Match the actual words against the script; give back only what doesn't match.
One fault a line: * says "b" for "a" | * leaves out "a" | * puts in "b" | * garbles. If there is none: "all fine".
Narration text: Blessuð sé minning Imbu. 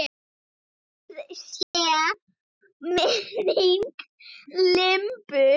all fine